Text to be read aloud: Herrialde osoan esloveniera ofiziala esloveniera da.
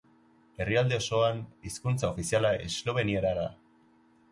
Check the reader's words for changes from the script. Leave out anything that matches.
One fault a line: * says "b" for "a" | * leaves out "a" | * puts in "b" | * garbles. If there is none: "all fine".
* says "hizkuntza" for "esloveniera"